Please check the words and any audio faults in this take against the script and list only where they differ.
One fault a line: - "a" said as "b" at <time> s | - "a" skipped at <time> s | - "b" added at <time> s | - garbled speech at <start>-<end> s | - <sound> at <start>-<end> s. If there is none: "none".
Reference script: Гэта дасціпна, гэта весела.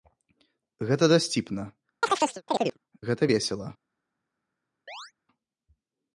- chirp at 2.0-2.8 s
- chirp at 4.9-5.1 s